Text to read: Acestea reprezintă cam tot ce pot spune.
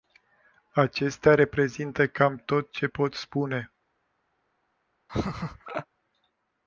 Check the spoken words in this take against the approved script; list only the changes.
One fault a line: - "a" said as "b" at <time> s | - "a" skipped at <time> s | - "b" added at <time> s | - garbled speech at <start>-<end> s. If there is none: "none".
none